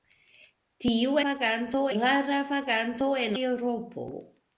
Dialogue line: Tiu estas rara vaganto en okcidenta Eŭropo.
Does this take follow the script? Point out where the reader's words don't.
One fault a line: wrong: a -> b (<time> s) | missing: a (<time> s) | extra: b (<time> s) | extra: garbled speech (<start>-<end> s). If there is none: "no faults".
wrong: estas -> vaganto (1.2 s)
missing: okcidenta (3.3 s)